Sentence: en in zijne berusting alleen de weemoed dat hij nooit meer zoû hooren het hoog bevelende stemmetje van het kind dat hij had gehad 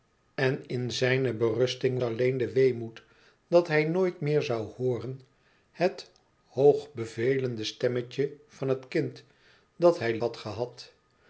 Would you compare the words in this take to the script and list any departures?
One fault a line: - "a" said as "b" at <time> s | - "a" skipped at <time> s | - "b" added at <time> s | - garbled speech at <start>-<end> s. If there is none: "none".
none